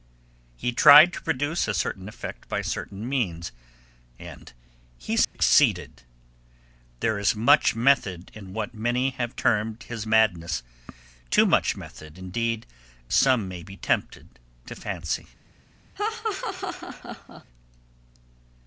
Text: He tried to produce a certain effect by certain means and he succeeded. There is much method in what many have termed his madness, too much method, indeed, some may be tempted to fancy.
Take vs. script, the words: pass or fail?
pass